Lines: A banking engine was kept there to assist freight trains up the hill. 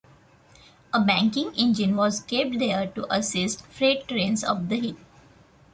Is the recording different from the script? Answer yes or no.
no